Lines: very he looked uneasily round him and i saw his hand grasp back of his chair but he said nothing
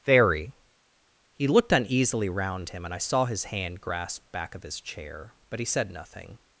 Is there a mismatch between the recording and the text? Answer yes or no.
no